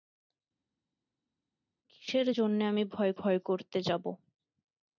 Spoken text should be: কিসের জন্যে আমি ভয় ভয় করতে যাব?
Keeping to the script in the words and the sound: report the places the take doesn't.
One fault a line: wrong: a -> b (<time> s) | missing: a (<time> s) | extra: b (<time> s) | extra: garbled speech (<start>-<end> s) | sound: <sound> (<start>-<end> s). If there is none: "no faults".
no faults